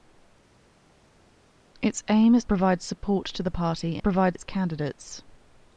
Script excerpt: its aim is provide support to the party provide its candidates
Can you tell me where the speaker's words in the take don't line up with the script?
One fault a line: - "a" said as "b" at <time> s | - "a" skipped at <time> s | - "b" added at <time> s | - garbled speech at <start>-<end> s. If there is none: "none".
none